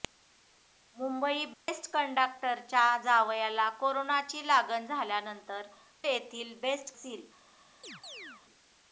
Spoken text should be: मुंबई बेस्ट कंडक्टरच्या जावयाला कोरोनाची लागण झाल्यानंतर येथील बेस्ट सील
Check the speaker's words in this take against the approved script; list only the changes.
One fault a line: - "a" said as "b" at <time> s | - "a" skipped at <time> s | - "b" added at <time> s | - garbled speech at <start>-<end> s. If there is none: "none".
none